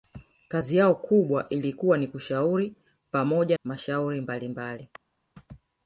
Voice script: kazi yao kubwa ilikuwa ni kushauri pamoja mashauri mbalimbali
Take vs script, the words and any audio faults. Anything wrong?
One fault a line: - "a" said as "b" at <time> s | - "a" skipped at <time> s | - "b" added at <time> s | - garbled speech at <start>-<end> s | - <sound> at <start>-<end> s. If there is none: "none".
none